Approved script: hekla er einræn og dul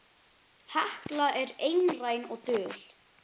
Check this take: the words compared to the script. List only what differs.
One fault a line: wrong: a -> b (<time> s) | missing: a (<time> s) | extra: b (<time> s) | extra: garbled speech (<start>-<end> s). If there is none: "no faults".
no faults